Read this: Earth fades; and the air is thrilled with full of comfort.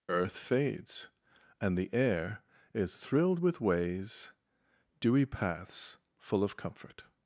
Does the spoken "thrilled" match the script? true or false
true